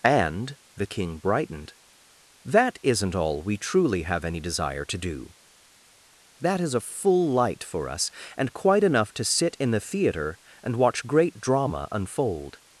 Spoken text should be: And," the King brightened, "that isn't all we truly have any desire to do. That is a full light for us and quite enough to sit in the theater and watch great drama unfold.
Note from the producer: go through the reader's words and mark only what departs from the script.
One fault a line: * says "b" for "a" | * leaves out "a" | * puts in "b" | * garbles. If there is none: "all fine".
all fine